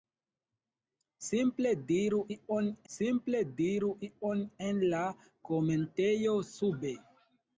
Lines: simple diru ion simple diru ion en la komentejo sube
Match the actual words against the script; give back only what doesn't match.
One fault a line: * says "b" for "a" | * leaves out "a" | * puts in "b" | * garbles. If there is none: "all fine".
all fine